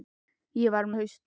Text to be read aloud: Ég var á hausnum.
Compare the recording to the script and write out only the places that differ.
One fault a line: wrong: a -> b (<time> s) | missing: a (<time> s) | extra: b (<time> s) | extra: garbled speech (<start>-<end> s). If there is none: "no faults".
no faults